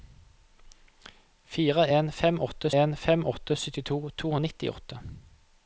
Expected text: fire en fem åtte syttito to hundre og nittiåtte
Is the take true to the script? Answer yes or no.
no